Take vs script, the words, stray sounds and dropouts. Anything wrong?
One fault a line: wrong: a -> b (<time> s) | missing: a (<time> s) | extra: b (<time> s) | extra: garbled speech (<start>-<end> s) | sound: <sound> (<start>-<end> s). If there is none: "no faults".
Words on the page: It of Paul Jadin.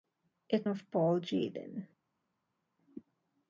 no faults